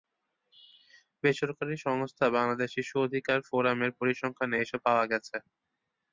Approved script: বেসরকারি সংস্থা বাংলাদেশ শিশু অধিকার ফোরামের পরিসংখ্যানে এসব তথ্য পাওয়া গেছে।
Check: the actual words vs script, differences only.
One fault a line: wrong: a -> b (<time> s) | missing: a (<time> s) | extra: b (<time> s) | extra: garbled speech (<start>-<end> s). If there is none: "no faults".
missing: তথ্য (4.8 s)